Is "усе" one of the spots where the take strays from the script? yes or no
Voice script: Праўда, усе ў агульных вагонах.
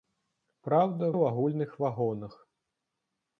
yes